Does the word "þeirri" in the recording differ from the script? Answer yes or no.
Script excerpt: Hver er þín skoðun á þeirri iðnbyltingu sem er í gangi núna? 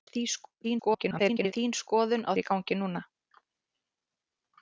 yes